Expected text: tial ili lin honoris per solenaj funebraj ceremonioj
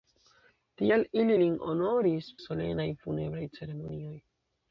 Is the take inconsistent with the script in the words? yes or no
yes